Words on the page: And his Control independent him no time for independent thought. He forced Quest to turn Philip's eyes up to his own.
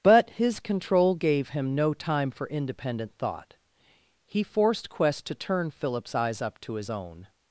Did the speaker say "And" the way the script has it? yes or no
no